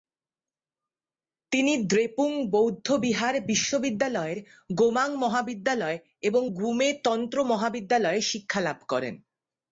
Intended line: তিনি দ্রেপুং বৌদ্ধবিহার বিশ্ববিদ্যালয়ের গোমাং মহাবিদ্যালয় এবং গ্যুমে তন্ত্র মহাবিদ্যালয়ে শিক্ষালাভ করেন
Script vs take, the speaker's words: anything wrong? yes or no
no